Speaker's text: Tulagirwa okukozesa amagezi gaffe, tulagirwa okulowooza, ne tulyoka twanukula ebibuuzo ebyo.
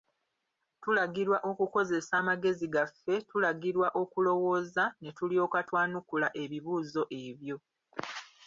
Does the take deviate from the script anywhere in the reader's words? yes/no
no